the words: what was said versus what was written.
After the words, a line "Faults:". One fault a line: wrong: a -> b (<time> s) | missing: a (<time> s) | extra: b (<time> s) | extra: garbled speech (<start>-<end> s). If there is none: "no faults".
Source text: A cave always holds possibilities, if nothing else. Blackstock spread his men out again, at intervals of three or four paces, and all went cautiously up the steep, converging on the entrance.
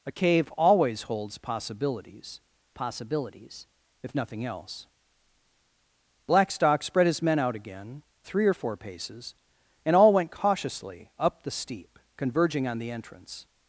A cave always holds possibilities possibilities, if nothing else. Blackstock spread his men out again, three or four paces, and all went cautiously up the steep, converging on the entrance.
Faults:
extra: possibilities (2.7 s)
missing: at intervals of (8.0 s)